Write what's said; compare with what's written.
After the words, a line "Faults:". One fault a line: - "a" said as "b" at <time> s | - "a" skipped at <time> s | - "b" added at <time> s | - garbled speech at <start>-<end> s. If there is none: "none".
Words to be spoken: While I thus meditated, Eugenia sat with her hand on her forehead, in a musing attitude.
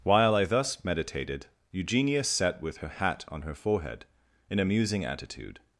While I thus meditated, Eugenia sat with her hat on her forehead, in a musing attitude.
Faults:
- "hand" said as "hat" at 2.9 s